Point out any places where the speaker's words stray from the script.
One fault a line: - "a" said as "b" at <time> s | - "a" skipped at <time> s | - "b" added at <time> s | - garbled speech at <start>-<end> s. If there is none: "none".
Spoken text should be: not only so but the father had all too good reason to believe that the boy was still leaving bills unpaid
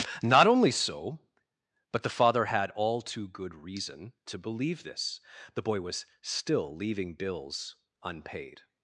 - "that" said as "this" at 4.8 s